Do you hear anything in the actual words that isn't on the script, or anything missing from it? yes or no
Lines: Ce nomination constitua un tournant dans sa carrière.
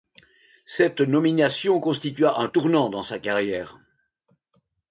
yes